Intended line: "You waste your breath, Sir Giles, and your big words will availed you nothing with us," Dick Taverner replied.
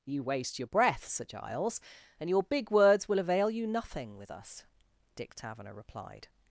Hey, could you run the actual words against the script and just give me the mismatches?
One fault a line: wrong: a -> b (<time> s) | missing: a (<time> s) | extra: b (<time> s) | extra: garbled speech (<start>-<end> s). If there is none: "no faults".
wrong: availed -> avail (3.2 s)